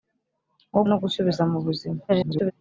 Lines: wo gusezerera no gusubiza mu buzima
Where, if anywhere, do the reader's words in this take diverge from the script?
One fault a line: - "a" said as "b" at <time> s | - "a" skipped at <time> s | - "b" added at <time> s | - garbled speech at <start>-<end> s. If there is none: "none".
- "gusezerera" skipped at 0.8 s
- garbled speech at 2.1-2.5 s